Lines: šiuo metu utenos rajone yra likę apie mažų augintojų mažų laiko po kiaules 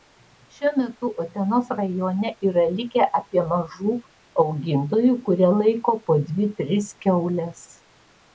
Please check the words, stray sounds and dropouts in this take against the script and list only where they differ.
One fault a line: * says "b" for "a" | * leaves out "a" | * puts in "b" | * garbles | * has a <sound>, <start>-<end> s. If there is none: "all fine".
* says "kurie" for "mažų"
* puts in "dvi tris"